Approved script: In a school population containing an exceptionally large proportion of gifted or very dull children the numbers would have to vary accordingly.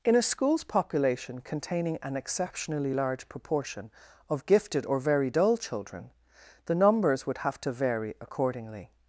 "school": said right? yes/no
no